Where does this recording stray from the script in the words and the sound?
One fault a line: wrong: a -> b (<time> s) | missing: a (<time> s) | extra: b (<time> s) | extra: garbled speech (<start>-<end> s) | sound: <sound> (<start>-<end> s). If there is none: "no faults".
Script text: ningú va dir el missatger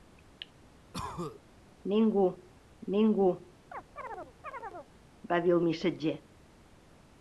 sound: cough (0.9-1.4 s)
extra: ningú (2.9 s)
sound: chirp (3.7-4.9 s)